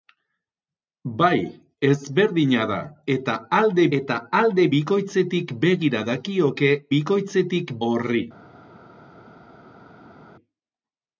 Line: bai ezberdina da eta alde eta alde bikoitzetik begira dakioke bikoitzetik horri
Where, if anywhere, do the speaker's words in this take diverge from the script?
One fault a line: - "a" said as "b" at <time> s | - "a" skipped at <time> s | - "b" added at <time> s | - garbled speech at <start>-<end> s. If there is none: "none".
none